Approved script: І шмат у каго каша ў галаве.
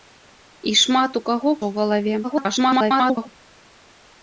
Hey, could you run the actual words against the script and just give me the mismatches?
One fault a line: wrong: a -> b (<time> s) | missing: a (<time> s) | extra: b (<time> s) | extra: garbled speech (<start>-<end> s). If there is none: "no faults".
missing: каша (1.5 s)
extra: garbled speech (2.2-3.3 s)